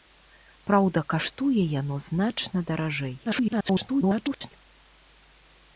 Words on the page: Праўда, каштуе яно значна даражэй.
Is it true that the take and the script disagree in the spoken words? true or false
true